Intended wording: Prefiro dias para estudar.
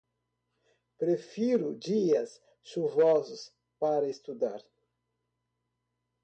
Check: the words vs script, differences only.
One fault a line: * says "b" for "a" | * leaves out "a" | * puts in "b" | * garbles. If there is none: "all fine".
* puts in "chuvosos"